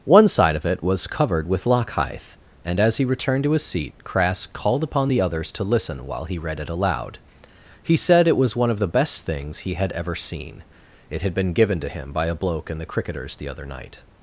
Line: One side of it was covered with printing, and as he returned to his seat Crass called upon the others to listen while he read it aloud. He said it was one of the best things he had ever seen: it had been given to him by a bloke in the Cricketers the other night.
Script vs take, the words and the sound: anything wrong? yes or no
yes